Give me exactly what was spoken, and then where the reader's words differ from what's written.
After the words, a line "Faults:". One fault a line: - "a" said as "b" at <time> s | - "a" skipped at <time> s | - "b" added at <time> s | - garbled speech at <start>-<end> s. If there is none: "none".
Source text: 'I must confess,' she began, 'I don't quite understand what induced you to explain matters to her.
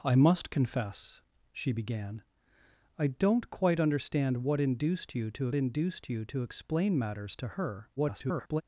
'I must confess,' she began, 'I don't quite understand what induced you to induced you to explain matters to her. [garbled]
Faults:
- "induced you to" added at 5.5 s
- garbled speech at 8.0-8.6 s